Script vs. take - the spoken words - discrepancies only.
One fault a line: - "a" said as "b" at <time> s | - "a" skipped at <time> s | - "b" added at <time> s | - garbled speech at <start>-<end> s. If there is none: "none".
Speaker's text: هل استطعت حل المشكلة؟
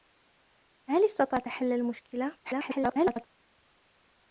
- garbled speech at 2.4-3.3 s